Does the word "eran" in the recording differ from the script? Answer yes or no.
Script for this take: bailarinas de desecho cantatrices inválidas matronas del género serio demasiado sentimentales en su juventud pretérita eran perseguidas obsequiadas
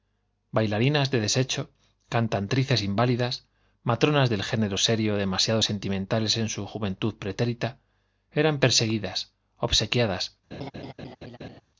no